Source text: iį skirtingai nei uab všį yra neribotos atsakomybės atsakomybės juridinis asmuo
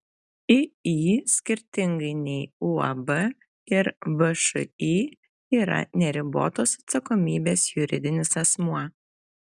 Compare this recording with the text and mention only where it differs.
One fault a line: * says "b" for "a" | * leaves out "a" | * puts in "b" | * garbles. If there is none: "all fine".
* puts in "ir"
* leaves out "atsakomybės"